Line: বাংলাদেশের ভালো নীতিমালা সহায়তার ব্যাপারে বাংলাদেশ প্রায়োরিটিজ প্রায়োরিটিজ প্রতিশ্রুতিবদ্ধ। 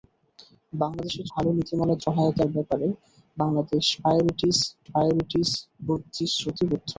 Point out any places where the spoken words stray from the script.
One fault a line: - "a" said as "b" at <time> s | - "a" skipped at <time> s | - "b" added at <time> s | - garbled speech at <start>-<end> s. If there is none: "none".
none